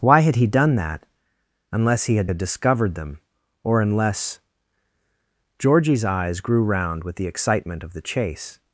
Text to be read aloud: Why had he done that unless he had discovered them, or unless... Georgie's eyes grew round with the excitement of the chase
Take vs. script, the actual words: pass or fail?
fail